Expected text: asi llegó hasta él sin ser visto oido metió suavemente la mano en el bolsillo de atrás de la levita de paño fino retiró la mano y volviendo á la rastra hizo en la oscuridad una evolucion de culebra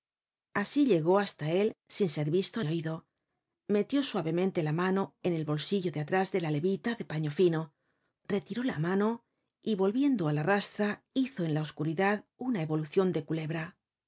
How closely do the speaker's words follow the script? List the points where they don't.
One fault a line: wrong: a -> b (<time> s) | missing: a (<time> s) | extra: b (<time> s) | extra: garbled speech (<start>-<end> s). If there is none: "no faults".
no faults